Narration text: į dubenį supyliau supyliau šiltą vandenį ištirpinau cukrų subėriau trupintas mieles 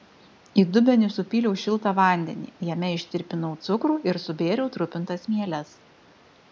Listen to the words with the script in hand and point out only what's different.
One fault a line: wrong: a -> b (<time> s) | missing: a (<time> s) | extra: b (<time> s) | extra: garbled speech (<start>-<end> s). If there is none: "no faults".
missing: supyliau (1.5 s)
extra: jame (2.7 s)
extra: ir (4.1 s)